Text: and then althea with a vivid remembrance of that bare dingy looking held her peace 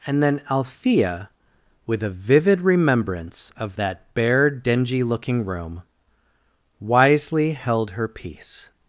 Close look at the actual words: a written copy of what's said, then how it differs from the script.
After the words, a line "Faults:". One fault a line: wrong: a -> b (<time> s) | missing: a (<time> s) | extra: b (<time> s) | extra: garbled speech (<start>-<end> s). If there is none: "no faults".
and then althea with a vivid remembrance of that bare dingy looking room wisely held her peace
Faults:
extra: room wisely (5.4 s)